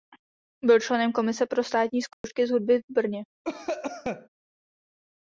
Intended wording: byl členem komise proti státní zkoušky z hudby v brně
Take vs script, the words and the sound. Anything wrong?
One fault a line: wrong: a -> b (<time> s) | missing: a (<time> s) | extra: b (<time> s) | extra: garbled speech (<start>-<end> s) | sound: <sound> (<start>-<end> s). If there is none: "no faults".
wrong: proti -> pro (1.4 s)
sound: dropout (2.1-2.2 s)
sound: cough (3.4-4.3 s)